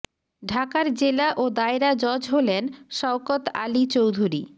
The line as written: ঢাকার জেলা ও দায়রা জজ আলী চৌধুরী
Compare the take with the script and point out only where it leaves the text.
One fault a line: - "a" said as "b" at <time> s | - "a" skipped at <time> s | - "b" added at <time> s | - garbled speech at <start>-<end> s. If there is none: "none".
- "হলেন শওকত" added at 2.3 s